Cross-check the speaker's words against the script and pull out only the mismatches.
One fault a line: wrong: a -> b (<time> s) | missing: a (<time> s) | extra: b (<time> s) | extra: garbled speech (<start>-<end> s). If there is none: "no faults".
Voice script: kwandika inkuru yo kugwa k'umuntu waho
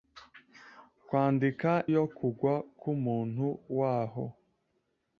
missing: inkuru (1.7 s)